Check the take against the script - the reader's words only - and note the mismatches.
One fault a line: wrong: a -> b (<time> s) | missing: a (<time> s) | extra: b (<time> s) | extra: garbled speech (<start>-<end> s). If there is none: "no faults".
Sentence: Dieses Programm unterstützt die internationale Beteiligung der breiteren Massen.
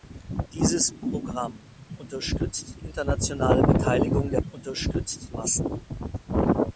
missing: die (2.8 s)
wrong: breiteren -> unterstützt (4.5 s)